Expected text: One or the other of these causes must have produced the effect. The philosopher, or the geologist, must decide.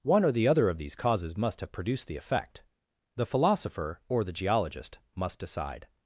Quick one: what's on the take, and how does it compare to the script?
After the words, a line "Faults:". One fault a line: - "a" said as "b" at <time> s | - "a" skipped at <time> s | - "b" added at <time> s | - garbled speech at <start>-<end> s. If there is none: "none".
One or the other of these causes must have produced the effect. The philosopher, or the geologist, must decide.
Faults:
none